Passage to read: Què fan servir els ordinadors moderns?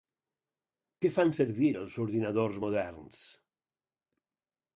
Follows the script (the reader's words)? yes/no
yes